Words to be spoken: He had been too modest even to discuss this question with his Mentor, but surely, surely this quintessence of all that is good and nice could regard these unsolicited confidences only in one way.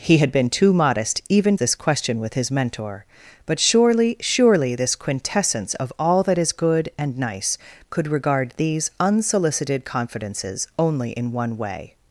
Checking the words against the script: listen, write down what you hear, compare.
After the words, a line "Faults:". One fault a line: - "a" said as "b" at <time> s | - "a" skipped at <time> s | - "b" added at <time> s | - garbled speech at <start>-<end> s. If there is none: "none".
He had been too modest even this question with his Mentor, but surely, surely this quintessence of all that is good and nice could regard these unsolicited confidences only in one way.
Faults:
- "to discuss" skipped at 1.6 s